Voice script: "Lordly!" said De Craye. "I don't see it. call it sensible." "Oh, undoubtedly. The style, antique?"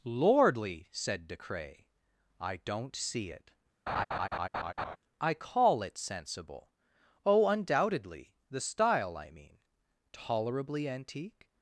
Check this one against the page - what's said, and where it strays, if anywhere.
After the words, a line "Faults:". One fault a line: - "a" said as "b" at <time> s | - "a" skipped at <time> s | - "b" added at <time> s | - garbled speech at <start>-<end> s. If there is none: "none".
"Lordly!" said De Craye. "I don't see it. I call it sensible." "Oh, undoubtedly. The style, I mean. Tolerably antique?"
Faults:
- "I" added at 5.2 s
- "I mean Tolerably" added at 9.2 s